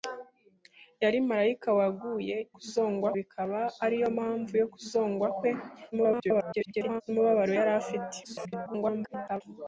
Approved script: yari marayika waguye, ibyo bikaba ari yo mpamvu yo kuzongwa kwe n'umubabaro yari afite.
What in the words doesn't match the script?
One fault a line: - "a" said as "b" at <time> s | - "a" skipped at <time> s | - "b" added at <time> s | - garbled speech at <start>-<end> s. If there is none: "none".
- "ibyo" said as "kuzongwa" at 2.6 s
- garbled speech at 5.9-7.0 s
- garbled speech at 8.2-9.4 s